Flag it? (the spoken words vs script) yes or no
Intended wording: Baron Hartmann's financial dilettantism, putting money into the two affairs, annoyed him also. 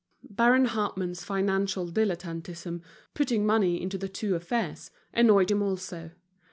no